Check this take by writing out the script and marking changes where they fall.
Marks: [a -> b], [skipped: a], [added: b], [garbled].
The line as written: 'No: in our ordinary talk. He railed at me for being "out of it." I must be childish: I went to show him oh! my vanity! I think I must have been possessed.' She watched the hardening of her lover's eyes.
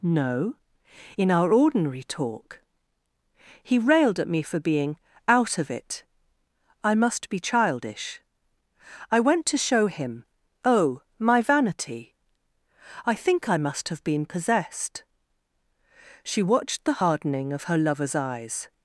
'No: in our ordinary talk. He railed at me for being "out of it." I must be childish: I went to show him oh! my vanity! I think I must have been possessed.' She watched the hardening of her lover's eyes.